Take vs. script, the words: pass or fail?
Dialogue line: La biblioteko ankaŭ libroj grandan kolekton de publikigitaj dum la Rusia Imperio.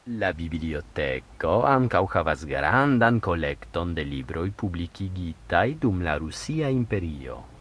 fail